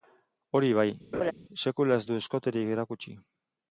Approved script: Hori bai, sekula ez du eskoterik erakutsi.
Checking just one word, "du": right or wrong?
right